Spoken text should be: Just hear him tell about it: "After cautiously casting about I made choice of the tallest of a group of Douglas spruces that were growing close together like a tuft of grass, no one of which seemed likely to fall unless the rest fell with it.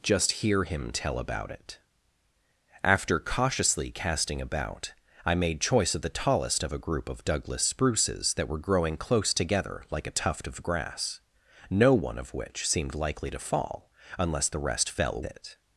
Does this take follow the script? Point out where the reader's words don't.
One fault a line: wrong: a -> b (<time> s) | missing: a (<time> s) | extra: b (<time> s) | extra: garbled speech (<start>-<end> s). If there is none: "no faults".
missing: with (15.2 s)